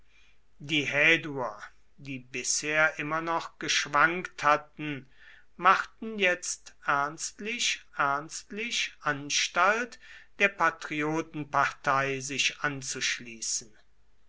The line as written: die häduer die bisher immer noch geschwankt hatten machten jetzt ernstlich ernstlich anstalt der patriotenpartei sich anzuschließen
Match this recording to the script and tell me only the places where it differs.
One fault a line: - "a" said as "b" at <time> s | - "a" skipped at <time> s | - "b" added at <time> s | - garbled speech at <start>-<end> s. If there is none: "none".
none